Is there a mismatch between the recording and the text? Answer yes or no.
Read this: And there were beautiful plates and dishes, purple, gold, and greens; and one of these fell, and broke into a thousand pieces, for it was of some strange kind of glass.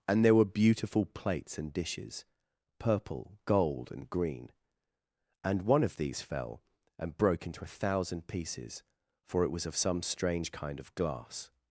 yes